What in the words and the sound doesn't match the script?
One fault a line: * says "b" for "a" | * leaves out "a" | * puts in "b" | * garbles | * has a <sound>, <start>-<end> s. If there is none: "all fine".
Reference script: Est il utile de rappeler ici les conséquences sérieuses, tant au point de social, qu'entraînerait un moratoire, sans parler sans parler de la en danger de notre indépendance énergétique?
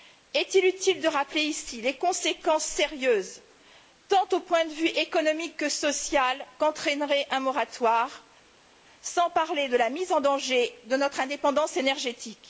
* puts in "vue économique que"
* leaves out "sans parler"
* puts in "mise"